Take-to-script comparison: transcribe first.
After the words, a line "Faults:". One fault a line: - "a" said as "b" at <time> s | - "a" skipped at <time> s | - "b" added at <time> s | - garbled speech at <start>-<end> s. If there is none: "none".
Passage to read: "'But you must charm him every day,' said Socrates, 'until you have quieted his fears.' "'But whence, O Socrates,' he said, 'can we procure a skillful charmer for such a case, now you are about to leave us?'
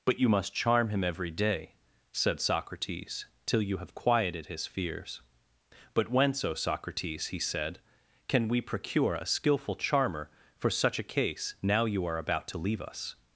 "'But you must charm him every day,' said Socrates, 'till you have quieted his fears.' "'But whence, O Socrates,' he said, 'can we procure a skillful charmer for such a case, now you are about to leave us?'
Faults:
- "until" said as "till" at 3.5 s